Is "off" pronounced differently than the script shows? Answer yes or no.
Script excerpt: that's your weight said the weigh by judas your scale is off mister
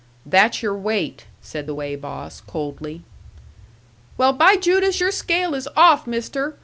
no